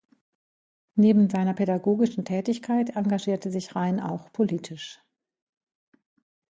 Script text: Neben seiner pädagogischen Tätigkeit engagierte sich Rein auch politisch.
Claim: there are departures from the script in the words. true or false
false